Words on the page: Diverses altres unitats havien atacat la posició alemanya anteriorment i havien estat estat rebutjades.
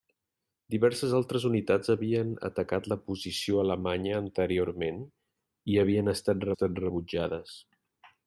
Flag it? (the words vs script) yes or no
no